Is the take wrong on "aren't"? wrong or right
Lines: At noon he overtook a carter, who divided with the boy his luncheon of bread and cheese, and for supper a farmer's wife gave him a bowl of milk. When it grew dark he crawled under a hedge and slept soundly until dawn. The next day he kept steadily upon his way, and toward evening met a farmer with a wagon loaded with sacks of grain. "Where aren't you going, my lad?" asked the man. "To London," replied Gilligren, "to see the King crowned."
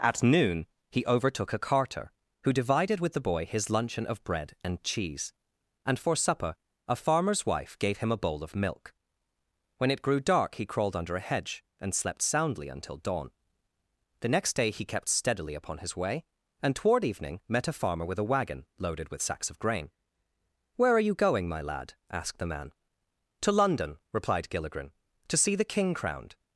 wrong